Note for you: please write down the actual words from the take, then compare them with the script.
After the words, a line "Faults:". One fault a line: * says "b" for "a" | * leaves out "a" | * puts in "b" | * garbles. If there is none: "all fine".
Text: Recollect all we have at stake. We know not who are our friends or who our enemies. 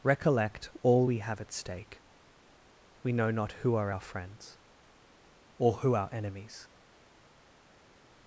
Recollect all we have at stake. We know not who are our friends or who our enemies.
Faults:
all fine